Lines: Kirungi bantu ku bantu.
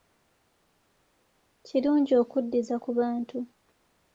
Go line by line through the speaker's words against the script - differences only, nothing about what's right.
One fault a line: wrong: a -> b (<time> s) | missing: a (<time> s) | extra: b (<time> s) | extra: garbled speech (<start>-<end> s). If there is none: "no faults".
wrong: bantu -> okuddiza (2.2 s)